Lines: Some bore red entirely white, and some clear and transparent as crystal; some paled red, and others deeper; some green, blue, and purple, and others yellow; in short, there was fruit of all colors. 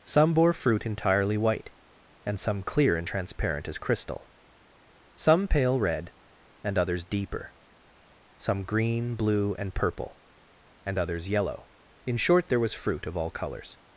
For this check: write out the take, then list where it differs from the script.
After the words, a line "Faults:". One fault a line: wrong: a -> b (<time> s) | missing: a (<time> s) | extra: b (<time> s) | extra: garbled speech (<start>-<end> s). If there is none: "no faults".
Some bore fruit entirely white, and some clear and transparent as crystal; some pale red, and others deeper; some green, blue, and purple, and others yellow; in short, there was fruit of all colors.
Faults:
wrong: red -> fruit (0.5 s)
wrong: paled -> pale (5.5 s)